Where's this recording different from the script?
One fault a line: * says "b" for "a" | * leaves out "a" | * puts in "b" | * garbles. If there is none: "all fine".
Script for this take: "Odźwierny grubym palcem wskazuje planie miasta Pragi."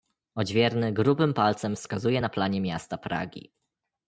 * puts in "na"